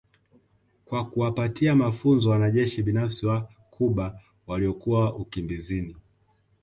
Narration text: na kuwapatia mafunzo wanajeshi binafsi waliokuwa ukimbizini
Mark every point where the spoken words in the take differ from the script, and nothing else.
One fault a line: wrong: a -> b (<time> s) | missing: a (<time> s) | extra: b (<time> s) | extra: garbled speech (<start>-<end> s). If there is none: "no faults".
wrong: na -> kwa (0.8 s)
extra: wa Cuba (3.3 s)